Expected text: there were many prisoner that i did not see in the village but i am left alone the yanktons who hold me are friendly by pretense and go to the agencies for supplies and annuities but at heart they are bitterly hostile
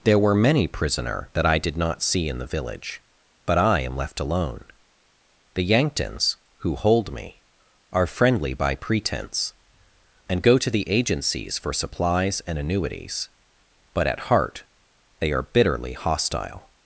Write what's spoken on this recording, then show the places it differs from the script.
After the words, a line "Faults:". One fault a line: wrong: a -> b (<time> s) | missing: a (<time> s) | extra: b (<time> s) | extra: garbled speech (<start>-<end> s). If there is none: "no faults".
there were many prisoner that i did not see in the village but i am left alone the yanktons who hold me are friendly by pretense and go to the agencies for supplies and annuities but at heart they are bitterly hostile
Faults:
no faults